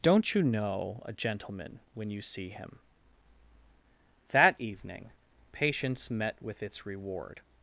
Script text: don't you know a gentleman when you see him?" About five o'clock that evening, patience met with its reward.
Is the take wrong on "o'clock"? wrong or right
wrong